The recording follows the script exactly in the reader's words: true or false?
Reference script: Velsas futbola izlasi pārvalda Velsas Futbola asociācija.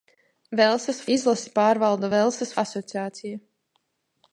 false